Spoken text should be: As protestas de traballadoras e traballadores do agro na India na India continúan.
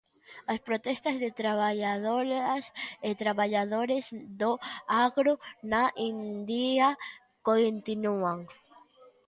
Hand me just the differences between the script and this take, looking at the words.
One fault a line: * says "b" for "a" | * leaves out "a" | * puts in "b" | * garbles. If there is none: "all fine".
* leaves out "na India"